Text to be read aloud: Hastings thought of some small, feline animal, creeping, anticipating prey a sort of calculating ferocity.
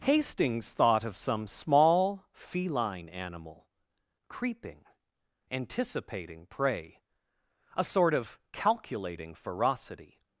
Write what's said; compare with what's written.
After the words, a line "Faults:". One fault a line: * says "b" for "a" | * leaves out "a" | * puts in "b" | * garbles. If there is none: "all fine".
Hastings thought of some small, feline animal, creeping, anticipating prey a sort of calculating ferocity.
Faults:
all fine